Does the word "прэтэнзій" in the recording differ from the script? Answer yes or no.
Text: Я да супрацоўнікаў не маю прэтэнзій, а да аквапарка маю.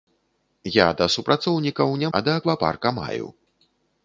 yes